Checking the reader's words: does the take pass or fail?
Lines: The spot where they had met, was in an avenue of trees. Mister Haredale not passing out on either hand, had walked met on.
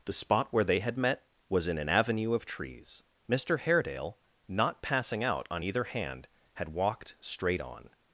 fail